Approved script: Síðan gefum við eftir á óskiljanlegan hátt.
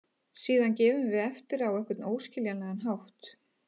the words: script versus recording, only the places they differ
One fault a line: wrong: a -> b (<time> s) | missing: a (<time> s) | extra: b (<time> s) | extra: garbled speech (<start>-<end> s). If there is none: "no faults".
extra: einhvern (1.7 s)